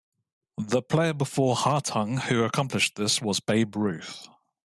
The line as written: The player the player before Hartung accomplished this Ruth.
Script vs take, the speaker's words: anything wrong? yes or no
yes